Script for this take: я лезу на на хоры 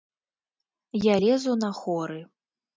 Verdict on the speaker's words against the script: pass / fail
fail